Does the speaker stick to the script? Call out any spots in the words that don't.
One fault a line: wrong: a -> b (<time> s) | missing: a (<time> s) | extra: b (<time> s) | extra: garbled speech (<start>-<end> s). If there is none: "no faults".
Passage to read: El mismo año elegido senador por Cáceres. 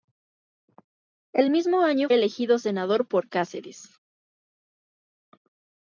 no faults